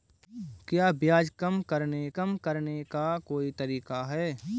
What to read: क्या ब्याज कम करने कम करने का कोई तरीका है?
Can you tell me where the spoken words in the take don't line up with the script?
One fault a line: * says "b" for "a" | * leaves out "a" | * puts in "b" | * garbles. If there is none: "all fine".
all fine